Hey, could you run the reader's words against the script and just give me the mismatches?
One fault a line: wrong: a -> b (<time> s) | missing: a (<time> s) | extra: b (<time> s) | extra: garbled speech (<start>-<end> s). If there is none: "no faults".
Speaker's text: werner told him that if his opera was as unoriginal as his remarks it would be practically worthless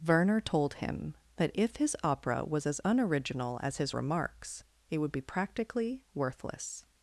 no faults